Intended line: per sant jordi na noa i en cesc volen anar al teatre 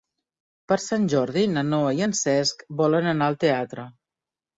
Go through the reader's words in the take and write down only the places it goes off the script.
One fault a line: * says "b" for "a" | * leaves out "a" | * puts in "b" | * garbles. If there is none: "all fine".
all fine